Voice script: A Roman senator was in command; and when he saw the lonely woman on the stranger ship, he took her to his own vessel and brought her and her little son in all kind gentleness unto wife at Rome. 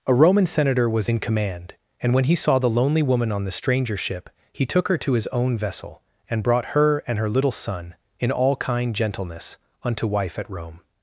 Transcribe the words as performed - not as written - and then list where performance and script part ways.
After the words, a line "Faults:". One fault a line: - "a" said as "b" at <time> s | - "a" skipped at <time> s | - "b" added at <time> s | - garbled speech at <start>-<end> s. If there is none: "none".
A Roman senator was in command; and when he saw the lonely woman on the stranger ship, he took her to his own vessel and brought her and her little son in all kind gentleness unto wife at Rome.
Faults:
none